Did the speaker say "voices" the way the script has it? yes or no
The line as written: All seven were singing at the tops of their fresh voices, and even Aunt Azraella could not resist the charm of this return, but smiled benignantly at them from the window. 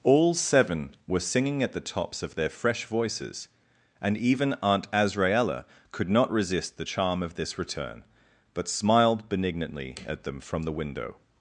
yes